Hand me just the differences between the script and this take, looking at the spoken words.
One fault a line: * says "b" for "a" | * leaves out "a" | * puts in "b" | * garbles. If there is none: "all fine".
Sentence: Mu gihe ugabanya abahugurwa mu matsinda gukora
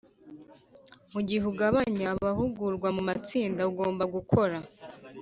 * puts in "ugomba"